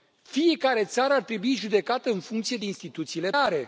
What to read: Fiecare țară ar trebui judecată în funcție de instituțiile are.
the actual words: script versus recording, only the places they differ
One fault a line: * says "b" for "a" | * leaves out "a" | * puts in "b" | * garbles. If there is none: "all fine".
all fine